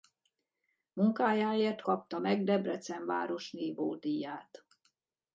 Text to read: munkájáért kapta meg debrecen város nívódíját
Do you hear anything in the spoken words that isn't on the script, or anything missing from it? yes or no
no